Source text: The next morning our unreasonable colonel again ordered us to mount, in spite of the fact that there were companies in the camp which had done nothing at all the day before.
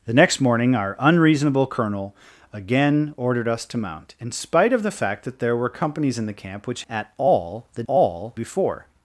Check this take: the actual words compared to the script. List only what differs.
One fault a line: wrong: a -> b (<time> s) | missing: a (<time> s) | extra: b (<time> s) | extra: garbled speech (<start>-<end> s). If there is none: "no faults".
missing: had done nothing (6.8 s)
wrong: day -> all (7.9 s)